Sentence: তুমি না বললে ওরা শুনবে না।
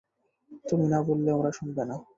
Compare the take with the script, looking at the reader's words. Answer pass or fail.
pass